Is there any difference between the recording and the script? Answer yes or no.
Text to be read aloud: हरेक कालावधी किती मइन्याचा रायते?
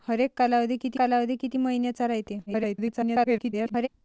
yes